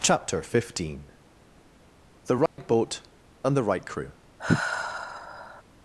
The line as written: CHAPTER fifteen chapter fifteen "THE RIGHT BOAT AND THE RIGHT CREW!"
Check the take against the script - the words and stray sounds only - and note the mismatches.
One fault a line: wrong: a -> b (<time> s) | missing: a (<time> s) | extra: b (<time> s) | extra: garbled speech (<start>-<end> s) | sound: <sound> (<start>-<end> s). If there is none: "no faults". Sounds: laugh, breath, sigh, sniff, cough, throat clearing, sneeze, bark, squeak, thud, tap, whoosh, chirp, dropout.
missing: chapter fifteen (1.1 s)
sound: dropout (2.5-2.6 s)
sound: sigh (4.4-5.6 s)